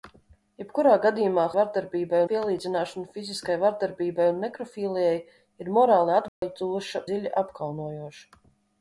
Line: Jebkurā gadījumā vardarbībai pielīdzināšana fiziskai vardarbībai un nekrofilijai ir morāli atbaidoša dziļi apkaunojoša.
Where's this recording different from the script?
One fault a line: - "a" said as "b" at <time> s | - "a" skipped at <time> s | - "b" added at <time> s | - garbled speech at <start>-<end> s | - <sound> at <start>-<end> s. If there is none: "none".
- dropout at 6.3-6.4 s